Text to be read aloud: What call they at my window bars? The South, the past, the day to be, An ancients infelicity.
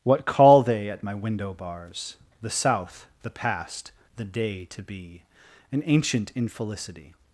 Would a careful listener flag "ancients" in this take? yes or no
yes